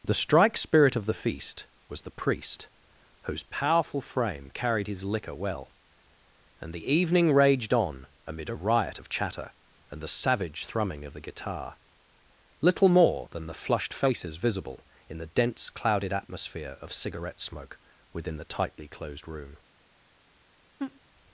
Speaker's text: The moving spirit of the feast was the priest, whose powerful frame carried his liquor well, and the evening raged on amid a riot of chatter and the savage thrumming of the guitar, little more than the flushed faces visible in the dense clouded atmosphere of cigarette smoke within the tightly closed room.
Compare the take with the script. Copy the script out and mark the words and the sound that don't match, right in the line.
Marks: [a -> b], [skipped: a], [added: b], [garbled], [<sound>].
The [moving -> strike] spirit of the feast was the priest, whose powerful frame carried his liquor well, and the evening raged on amid a riot of chatter and the savage thrumming of the guitar, little more than the flushed faces visible in the dense clouded atmosphere of cigarette smoke within the tightly closed room. [laugh]